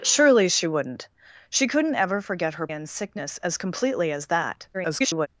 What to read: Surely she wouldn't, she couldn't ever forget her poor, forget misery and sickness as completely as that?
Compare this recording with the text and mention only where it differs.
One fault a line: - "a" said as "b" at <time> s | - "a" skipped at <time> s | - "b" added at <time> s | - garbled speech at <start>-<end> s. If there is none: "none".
- "poor forget misery" skipped at 2.7 s
- garbled speech at 4.7-5.3 s